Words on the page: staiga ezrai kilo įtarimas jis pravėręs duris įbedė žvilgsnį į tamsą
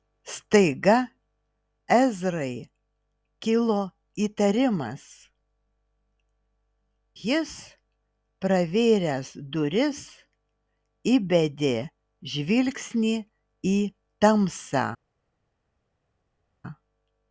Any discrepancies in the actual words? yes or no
no